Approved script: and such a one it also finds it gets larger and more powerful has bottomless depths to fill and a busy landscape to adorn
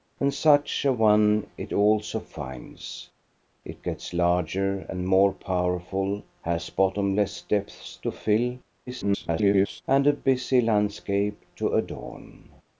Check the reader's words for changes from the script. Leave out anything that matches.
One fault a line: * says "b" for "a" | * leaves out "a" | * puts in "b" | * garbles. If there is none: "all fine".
* garbles